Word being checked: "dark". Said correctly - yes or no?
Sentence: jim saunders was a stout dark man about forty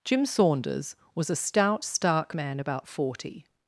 no